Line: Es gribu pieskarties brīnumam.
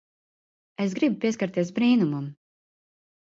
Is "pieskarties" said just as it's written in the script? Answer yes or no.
yes